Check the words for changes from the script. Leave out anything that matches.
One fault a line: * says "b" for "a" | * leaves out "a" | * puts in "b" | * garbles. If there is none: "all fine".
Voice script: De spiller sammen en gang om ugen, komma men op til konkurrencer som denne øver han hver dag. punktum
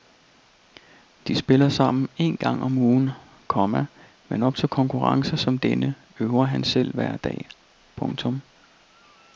* puts in "selv"